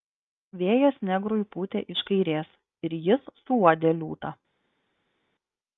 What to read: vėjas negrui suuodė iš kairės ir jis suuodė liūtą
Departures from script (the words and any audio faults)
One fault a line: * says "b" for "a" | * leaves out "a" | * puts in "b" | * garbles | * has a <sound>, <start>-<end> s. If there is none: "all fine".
* says "pūtė" for "suuodė"